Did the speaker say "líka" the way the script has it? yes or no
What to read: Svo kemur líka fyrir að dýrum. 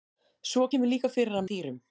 yes